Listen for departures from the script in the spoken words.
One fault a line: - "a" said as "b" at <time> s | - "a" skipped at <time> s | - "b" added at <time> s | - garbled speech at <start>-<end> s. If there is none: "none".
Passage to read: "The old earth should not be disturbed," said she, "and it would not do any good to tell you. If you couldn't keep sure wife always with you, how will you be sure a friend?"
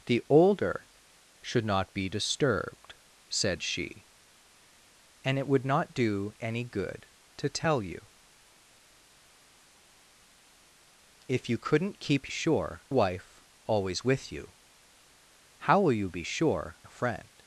none